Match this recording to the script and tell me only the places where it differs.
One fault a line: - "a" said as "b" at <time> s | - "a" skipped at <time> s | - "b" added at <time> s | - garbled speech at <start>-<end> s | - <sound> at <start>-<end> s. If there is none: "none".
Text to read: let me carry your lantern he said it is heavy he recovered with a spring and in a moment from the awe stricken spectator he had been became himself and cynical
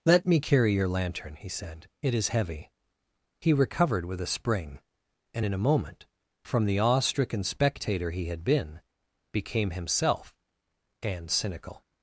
none